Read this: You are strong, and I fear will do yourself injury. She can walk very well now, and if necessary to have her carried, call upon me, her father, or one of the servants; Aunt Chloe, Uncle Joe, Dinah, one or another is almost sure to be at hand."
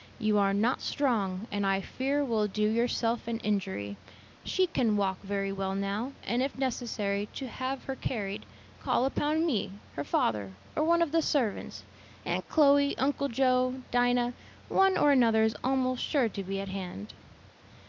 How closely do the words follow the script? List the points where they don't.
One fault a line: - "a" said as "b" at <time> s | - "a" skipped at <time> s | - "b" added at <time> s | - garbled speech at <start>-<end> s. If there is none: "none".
- "not" added at 0.5 s
- "an" added at 3.3 s